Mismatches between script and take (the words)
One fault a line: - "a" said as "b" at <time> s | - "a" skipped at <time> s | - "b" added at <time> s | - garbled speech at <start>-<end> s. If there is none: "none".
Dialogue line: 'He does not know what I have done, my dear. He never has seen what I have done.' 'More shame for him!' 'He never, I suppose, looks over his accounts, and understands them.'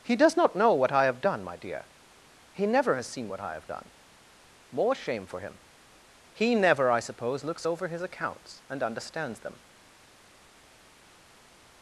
none